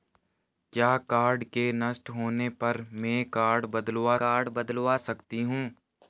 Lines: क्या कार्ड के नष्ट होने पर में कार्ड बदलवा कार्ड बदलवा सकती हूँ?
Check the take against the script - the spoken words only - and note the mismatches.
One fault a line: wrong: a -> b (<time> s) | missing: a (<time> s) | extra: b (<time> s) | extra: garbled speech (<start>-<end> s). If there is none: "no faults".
no faults